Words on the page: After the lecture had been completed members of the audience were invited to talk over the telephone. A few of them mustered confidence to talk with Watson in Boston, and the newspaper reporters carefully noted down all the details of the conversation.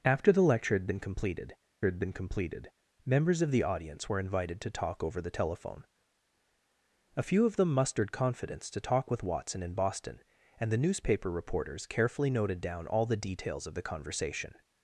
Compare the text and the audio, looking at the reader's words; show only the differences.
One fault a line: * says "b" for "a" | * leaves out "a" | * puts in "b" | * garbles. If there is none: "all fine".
* puts in "had been completed"